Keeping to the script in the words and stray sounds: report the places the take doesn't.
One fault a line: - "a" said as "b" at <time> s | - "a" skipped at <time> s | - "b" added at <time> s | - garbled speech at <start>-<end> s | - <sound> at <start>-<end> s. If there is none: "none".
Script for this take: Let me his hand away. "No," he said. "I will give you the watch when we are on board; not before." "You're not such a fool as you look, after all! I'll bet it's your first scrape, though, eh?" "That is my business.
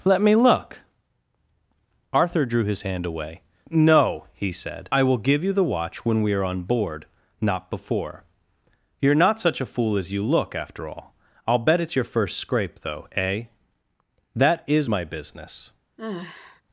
- "look Arthur drew" added at 0.3 s
- sigh at 16.0-16.6 s